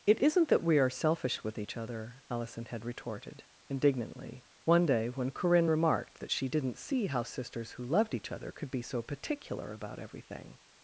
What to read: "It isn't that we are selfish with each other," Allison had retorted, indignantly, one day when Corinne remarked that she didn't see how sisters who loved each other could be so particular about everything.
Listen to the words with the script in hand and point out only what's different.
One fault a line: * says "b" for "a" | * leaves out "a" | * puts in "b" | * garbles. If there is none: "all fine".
all fine